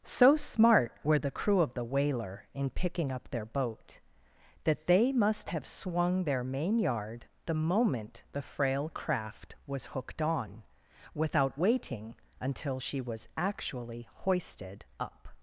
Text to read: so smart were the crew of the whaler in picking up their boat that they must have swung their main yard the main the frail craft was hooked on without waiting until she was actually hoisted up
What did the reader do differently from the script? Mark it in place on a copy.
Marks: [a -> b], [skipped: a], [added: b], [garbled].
so smart were the crew of the whaler in picking up their boat that they must have swung their main yard the [main -> moment] the frail craft was hooked on without waiting until she was actually hoisted up